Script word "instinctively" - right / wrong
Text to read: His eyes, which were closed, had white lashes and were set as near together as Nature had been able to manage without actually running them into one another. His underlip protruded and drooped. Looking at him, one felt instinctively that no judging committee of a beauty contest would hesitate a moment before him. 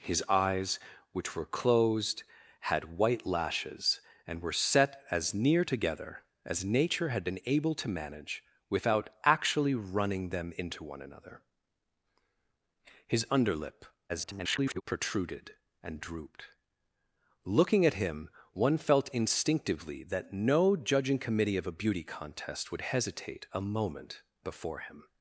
right